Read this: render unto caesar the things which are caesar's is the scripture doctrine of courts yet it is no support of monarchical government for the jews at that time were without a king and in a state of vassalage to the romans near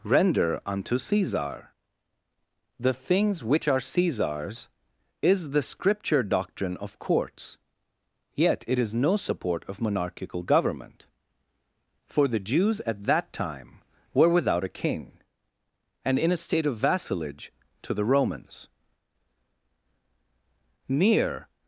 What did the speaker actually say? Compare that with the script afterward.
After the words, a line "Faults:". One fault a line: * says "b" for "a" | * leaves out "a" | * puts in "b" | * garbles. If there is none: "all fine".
render unto caesar the things which are caesar's is the scripture doctrine of courts yet it is no support of monarchical government for the jews at that time were without a king and in a state of vassalage to the romans near
Faults:
all fine